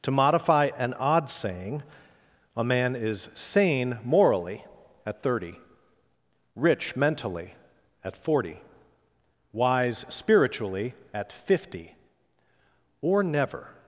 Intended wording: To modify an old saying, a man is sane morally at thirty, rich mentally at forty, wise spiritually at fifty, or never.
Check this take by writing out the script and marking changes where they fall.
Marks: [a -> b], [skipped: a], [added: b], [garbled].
To modify an [old -> odd] saying, a man is sane morally at thirty, rich mentally at forty, wise spiritually at fifty, or never.